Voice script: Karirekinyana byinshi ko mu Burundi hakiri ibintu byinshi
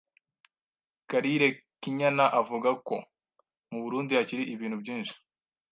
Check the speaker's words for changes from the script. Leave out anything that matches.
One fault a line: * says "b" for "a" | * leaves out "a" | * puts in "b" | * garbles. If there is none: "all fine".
* says "avuga" for "byinshi"